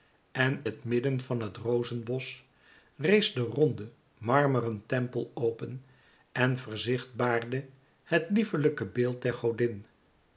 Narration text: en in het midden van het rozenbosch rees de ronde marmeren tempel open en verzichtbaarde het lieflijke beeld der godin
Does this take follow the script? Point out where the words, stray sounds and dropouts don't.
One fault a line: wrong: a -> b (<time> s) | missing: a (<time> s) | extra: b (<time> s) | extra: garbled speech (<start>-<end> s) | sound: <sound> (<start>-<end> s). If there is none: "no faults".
missing: in (0.7 s)